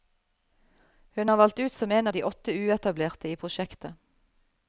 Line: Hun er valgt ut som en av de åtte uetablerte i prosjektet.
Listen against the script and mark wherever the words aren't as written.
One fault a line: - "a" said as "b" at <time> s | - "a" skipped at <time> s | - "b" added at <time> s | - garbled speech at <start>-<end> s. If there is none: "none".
none